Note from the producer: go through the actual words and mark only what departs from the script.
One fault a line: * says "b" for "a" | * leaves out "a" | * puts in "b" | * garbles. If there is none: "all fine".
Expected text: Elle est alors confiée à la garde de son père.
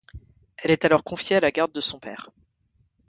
all fine